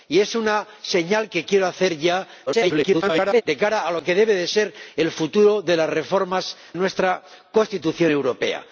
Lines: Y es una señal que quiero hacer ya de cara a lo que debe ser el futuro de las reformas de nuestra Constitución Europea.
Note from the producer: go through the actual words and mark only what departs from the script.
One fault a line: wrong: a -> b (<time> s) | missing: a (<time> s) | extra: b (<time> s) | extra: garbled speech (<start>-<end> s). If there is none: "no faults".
extra: garbled speech (2.5-3.4 s)
missing: de (6.6 s)